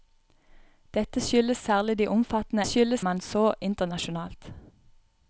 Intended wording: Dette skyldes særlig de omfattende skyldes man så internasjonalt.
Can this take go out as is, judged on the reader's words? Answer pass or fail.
pass